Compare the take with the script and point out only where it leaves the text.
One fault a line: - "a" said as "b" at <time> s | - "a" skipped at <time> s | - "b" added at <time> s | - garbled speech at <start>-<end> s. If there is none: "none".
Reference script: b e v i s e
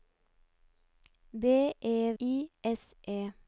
- "v" skipped at 2.1 s